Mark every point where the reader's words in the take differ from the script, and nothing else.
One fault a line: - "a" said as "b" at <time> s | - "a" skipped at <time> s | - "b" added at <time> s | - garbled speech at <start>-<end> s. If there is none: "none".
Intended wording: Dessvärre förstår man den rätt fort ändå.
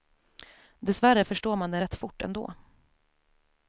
none